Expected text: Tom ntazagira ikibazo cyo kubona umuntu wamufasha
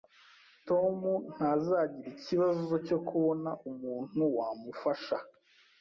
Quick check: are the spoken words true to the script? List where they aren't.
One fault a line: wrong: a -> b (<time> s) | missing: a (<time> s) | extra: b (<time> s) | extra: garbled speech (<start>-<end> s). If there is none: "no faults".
no faults